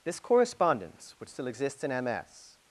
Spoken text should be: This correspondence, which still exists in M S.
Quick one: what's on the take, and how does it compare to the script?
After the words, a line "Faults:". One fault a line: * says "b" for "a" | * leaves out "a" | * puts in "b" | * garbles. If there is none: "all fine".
This correspondence, which still exists in M S.
Faults:
all fine